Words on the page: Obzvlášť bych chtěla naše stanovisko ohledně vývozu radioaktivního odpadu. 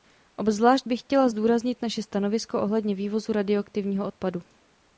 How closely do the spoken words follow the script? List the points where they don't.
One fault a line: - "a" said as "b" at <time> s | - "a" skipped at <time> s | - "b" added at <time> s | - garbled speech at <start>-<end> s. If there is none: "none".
- "zdůraznit" added at 1.3 s